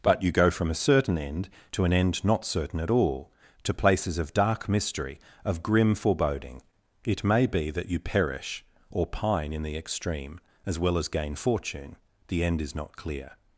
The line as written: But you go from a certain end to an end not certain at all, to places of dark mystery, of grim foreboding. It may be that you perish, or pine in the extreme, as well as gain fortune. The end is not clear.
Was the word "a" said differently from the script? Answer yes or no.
no